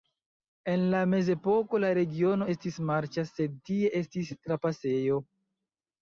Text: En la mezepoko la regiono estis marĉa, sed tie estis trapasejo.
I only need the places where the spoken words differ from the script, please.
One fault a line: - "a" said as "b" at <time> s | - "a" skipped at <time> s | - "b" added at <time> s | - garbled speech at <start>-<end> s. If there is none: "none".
none